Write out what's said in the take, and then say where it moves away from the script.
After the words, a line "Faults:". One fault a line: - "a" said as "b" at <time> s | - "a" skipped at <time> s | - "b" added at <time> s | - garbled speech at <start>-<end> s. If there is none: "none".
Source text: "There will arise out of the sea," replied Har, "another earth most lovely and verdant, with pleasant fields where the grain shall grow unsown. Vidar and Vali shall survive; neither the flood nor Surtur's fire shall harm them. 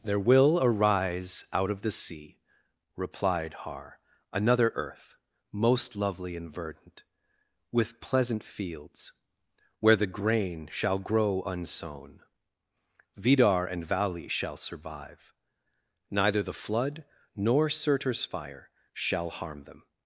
"There will arise out of the sea," replied Har, "another earth most lovely and verdant, with pleasant fields where the grain shall grow unsown. Vidar and Vali shall survive; neither the flood nor Surtur's fire shall harm them.
Faults:
none